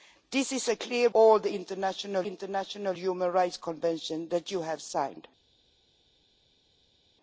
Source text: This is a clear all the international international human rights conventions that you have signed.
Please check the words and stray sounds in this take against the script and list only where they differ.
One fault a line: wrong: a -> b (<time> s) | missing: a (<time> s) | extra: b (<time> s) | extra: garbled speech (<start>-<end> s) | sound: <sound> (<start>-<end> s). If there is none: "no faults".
no faults